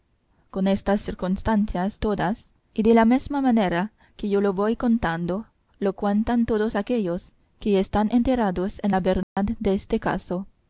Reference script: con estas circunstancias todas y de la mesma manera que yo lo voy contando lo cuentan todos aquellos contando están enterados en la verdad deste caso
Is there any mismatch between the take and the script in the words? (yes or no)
yes